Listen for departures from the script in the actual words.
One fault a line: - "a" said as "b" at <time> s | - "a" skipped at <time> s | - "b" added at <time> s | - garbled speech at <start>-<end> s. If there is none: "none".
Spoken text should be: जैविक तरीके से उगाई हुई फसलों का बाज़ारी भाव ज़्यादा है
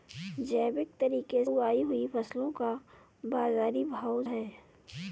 - "से" skipped at 1.4 s
- "ज़्यादा" skipped at 4.2 s